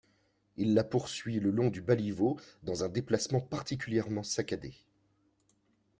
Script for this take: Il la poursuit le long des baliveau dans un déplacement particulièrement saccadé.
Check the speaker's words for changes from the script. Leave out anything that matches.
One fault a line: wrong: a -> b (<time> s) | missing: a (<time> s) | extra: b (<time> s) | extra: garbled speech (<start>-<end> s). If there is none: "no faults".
wrong: des -> du (1.7 s)